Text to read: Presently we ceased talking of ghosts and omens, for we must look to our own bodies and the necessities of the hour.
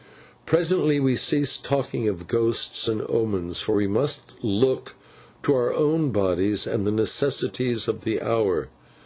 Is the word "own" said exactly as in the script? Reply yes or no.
yes